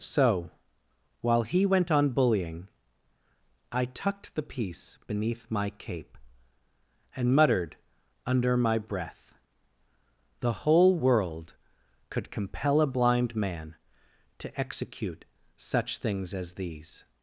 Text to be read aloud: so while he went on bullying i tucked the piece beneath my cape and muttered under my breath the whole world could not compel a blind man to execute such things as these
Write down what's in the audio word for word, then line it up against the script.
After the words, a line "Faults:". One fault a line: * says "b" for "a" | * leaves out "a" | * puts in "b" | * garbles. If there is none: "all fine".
so while he went on bullying i tucked the piece beneath my cape and muttered under my breath the whole world could compel a blind man to execute such things as these
Faults:
* leaves out "not"